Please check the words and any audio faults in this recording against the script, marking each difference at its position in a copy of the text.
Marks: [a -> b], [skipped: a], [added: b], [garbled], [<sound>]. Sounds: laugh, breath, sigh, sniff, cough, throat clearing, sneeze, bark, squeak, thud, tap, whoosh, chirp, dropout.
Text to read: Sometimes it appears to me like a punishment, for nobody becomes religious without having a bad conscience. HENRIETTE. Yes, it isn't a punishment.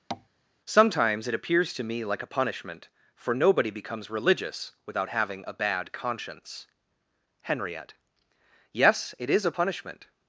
[tap] Sometimes it appears to me like a punishment, for nobody becomes religious without having a bad conscience. HENRIETTE. Yes, it [isn't -> is] a punishment.